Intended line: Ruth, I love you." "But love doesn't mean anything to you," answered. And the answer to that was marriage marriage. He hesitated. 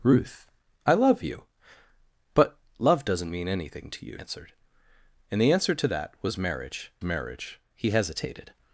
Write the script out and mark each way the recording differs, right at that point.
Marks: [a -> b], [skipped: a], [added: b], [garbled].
Ruth, I love you." "But love doesn't mean anything to you," answered. And the answer to that was marriage marriage. He hesitated.